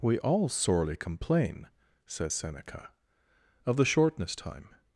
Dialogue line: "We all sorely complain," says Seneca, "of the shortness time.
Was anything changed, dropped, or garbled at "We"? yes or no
no